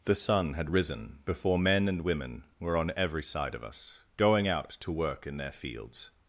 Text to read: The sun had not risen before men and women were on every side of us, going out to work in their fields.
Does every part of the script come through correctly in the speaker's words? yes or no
no